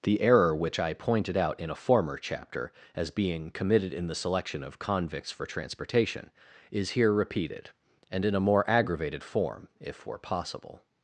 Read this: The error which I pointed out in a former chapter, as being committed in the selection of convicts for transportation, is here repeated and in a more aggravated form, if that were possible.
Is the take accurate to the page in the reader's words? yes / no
no